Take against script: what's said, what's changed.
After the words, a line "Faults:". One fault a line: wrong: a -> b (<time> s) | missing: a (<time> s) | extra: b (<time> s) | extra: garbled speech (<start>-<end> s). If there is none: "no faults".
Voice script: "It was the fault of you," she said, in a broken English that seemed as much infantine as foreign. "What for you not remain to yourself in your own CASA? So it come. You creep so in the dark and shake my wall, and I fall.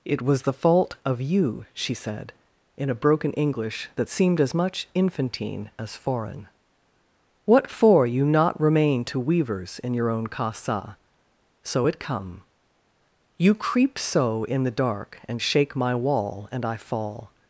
"It was the fault of you," she said, in a broken English that seemed as much infantine as foreign. "What for you not remain to weavers in your own CASA? So it come. You creep so in the dark and shake my wall, and I fall.
Faults:
wrong: yourself -> weavers (9.2 s)